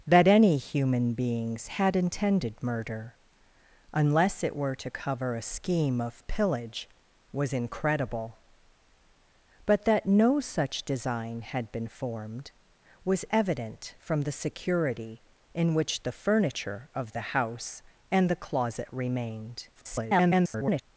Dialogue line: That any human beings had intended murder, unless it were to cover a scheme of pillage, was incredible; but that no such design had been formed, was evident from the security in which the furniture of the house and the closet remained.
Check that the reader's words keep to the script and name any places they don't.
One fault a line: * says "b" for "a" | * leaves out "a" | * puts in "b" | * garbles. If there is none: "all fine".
* garbles